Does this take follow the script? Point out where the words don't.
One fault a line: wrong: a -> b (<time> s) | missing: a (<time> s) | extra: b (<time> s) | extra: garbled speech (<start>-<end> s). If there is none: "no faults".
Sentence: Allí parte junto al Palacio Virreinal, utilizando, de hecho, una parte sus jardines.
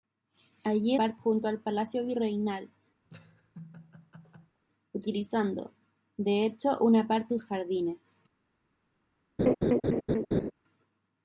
no faults